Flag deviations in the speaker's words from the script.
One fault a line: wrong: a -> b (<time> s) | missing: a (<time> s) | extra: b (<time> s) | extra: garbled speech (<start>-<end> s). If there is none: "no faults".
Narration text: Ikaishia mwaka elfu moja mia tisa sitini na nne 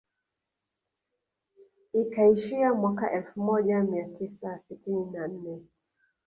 no faults